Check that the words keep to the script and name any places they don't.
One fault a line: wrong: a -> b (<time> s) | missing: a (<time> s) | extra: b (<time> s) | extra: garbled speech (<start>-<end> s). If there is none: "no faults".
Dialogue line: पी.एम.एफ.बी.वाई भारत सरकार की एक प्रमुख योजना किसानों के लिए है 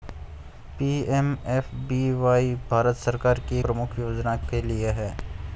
missing: एक (3.6 s)
missing: किसानों (4.4 s)